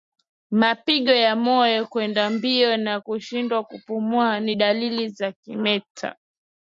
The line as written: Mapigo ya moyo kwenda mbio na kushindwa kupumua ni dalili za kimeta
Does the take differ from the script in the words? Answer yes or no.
no